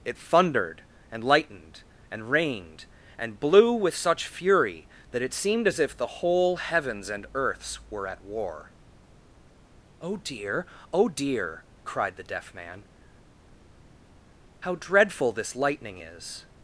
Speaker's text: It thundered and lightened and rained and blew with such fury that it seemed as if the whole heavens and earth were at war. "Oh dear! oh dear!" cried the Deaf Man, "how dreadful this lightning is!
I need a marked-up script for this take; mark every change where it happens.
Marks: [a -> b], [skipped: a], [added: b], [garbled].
It thundered and lightened and rained and blew with such fury that it seemed as if the whole heavens and [earth -> earths] were at war. "Oh dear! oh dear!" cried the Deaf Man, "how dreadful this lightning is!